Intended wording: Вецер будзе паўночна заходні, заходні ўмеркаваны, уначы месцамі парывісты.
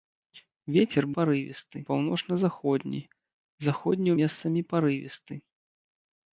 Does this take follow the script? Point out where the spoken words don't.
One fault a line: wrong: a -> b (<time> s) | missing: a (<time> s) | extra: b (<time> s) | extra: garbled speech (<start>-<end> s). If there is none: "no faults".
wrong: будзе -> парывісты (1.2 s)
missing: ўмеркаваны уначы (4.1 s)